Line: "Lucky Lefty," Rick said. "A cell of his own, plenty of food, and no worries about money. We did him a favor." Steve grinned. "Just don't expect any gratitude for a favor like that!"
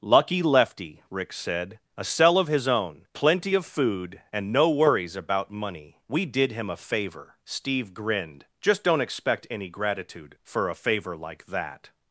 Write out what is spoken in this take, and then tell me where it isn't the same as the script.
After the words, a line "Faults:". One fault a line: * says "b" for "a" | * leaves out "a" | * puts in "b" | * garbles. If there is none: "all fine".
"Lucky Lefty," Rick said. "A cell of his own, plenty of food, and no worries about money. We did him a favor." Steve grinned. "Just don't expect any gratitude for a favor like that!"
Faults:
all fine